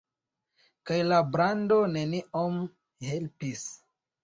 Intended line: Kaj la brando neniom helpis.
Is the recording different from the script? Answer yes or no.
no